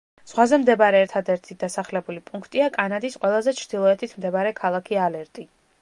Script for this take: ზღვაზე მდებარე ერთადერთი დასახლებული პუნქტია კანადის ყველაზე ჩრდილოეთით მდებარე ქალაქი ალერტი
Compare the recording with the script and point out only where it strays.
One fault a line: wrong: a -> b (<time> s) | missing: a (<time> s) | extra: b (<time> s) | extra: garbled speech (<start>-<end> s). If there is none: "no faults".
no faults